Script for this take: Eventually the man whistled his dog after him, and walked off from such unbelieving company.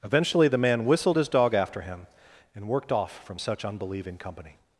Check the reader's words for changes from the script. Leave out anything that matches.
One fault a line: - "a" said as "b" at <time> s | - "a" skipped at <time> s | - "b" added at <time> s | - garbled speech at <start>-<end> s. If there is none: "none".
- "walked" said as "worked" at 2.7 s